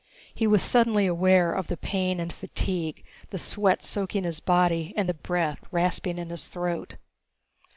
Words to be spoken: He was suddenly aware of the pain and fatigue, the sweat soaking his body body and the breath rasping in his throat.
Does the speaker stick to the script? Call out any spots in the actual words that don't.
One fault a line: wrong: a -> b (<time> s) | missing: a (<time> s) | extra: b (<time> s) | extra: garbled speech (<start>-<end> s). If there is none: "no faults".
missing: body (5.0 s)